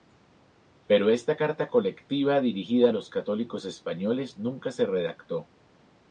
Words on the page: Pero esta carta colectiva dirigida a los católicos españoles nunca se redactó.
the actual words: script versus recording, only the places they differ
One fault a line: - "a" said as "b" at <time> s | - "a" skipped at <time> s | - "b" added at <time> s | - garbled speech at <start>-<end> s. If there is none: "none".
none